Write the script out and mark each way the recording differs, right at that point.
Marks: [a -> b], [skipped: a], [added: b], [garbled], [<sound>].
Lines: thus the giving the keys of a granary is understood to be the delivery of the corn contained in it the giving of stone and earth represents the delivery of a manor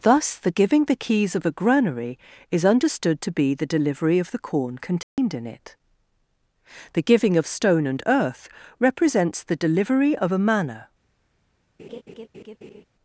thus the giving the keys of a granary is understood to be the delivery of the corn contained [dropout] in it the giving of stone and earth represents the delivery of a manor [laugh]